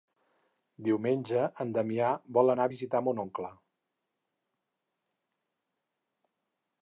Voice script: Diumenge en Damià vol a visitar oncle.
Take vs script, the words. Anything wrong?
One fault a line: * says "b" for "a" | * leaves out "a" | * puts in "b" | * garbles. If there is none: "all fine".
* puts in "anar"
* puts in "mon"